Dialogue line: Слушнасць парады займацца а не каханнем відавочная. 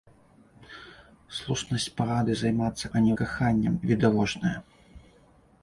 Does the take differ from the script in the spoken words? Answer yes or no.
no